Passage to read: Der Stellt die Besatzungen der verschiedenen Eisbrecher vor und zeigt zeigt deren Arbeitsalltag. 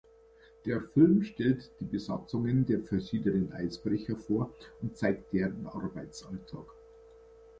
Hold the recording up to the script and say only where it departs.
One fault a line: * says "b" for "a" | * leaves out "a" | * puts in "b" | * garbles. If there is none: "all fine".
* puts in "Film"
* leaves out "zeigt"